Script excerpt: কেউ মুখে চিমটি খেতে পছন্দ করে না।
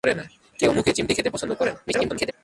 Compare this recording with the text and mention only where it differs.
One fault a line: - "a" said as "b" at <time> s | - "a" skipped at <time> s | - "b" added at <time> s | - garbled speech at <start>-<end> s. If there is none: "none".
- garbled speech at 1.9-2.3 s